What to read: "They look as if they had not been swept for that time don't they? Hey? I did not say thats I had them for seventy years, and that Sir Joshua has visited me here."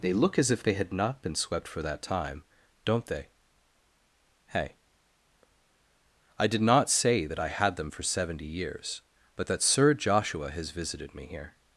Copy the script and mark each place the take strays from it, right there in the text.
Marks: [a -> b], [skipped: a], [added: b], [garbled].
"They look as if they had not been swept for that time don't they? Hey? I did not say [thats -> that] I had them for seventy years, [and -> but] that Sir Joshua has visited me here."